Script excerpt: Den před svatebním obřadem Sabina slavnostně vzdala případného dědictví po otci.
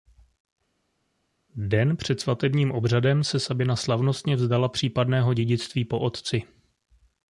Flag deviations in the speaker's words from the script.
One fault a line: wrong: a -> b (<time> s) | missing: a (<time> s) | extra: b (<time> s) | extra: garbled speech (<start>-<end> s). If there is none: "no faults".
extra: se (3.2 s)